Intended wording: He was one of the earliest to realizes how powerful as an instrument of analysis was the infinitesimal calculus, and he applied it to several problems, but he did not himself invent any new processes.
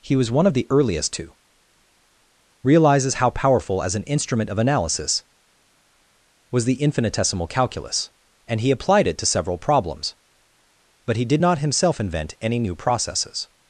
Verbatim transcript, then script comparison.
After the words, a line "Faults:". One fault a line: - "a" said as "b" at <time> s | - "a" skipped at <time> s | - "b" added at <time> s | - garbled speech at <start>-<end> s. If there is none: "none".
He was one of the earliest to realizes how powerful as an instrument of analysis was the infinitesimal calculus, and he applied it to several problems, but he did not himself invent any new processes.
Faults:
none